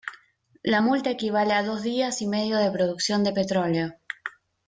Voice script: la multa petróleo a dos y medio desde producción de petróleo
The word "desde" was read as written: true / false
false